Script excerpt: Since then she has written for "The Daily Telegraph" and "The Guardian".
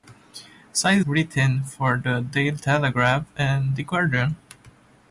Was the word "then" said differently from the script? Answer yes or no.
yes